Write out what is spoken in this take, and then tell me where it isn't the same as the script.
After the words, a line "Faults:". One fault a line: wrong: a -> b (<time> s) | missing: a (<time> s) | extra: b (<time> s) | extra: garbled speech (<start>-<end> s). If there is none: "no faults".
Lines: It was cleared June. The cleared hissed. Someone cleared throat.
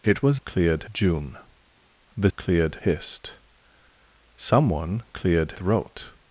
It was cleared June. The cleared hissed. Someone cleared throat.
Faults:
no faults